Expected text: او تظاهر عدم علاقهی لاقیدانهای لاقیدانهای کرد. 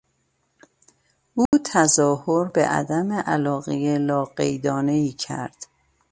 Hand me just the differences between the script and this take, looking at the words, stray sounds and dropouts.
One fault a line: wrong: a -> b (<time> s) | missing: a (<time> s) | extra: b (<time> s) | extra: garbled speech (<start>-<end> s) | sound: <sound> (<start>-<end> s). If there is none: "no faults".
sound: dropout (1.5-1.5 s)
extra: به (2.5 s)
missing: لاقیدانهای (5.1 s)